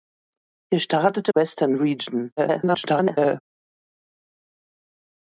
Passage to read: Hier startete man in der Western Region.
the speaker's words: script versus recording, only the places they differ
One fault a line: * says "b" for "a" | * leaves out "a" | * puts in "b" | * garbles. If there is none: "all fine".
* leaves out "man in der"
* garbles